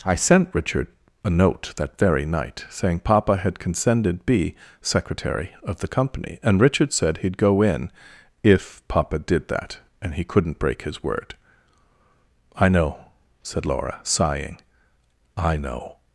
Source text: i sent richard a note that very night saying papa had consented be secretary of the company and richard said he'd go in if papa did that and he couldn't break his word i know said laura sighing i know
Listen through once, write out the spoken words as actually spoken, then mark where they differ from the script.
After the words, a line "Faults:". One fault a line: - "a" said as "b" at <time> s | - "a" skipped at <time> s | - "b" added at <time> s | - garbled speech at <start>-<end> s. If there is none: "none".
i sent richard a note that very night saying papa had consented be secretary of the company and richard said he'd go in if papa did that and he couldn't break his word i know said laura sighing i know
Faults:
none